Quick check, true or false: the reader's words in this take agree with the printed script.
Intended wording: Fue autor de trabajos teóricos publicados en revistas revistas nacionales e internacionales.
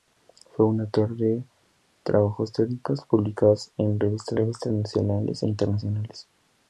true